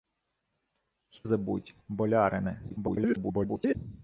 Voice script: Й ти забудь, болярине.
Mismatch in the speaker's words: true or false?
true